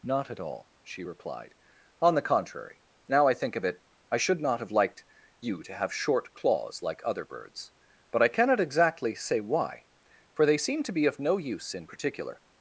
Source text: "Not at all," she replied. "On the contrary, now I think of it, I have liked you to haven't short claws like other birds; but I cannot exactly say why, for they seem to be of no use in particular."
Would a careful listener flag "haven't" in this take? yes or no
yes